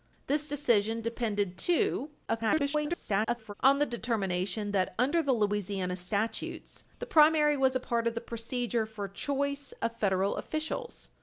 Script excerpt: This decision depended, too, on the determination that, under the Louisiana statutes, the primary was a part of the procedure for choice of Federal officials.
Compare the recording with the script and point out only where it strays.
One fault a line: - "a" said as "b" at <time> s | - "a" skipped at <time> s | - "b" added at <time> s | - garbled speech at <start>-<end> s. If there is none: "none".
- garbled speech at 2.3-3.5 s